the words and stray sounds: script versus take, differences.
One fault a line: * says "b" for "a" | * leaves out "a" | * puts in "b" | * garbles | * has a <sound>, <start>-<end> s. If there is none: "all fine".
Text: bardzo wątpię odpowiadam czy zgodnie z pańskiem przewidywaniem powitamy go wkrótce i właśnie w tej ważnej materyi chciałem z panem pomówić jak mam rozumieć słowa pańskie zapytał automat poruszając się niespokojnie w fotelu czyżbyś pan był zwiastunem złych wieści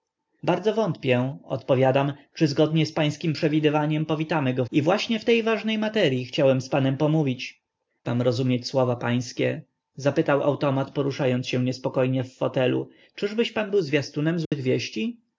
* leaves out "wkrótce"
* leaves out "jak"
* has a dropout, 14.4-14.5 s